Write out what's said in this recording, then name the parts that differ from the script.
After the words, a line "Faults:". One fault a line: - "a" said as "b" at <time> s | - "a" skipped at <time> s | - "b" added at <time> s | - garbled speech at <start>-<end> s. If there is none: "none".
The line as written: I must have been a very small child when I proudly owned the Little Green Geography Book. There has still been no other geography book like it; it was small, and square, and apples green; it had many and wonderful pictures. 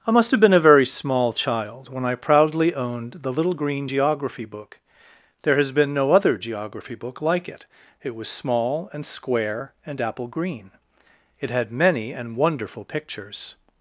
I must have been a very small child when I proudly owned the Little Green Geography Book. There has been no other geography book like it; it was small, and square, and apple green; it had many and wonderful pictures.
Faults:
- "still" skipped at 5.7 s
- "apples" said as "apple" at 10.0 s